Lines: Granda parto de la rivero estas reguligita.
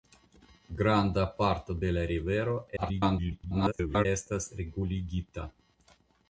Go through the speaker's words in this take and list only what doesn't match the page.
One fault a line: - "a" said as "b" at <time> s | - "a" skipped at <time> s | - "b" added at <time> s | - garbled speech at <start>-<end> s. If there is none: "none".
- garbled speech at 2.8-4.1 s